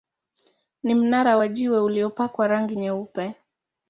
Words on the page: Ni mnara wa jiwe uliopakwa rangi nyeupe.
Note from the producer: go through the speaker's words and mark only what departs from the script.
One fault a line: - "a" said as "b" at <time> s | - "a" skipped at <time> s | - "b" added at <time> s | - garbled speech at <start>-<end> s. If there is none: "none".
none